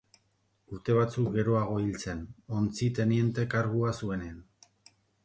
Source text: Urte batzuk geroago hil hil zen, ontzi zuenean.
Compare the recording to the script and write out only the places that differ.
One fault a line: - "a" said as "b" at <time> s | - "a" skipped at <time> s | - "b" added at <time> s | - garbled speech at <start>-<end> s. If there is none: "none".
- "hil" skipped at 2.0 s
- "teniente kargua" added at 3.0 s